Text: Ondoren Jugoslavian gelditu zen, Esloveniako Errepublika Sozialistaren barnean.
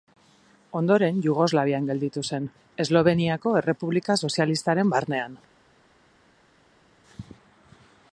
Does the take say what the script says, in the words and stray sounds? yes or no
yes